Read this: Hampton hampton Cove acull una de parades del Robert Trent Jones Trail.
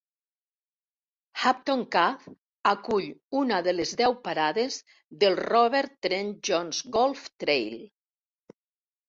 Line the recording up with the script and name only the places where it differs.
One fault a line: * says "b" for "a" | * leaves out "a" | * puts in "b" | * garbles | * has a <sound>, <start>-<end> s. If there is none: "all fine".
* leaves out "hampton"
* puts in "les deu"
* puts in "Golf"